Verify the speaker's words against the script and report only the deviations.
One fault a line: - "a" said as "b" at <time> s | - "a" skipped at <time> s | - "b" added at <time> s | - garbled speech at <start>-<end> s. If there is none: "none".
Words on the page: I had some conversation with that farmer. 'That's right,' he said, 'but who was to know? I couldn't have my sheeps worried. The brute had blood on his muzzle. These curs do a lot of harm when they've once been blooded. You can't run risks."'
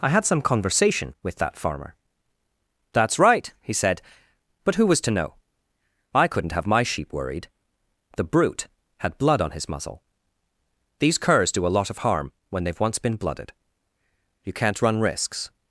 - "sheeps" said as "sheep" at 6.8 s